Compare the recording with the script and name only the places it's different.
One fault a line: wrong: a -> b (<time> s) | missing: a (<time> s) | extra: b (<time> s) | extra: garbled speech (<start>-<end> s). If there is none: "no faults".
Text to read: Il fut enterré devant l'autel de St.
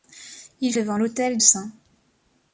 missing: fut enterré (0.7 s)
missing: de (1.4 s)